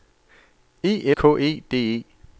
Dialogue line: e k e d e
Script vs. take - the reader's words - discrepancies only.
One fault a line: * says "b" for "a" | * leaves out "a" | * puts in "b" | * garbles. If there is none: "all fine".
all fine